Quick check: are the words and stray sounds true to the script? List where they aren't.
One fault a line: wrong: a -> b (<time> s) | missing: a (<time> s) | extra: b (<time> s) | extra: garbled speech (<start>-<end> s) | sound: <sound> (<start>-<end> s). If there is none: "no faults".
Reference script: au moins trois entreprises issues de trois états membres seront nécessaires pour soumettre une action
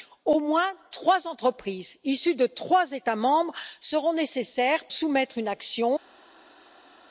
missing: pour (4.8 s)